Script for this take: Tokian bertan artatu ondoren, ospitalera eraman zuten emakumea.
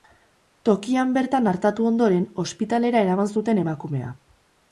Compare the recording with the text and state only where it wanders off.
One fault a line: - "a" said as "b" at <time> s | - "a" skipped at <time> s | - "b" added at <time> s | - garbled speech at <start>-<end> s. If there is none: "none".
none